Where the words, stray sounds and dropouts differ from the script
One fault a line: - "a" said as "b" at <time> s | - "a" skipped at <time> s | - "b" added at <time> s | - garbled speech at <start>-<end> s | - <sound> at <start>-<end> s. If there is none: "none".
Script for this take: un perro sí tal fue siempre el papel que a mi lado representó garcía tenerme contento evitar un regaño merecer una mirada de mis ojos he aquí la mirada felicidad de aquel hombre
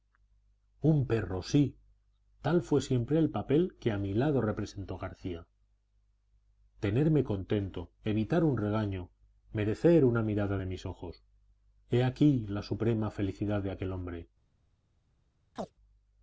- "mirada" said as "suprema" at 12.6 s
- chirp at 15.6-15.7 s